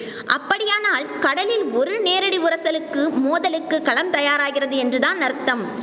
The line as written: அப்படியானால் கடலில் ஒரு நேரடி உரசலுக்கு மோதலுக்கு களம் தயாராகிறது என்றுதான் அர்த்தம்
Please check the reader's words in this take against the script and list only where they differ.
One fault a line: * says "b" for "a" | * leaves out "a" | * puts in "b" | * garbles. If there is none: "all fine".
all fine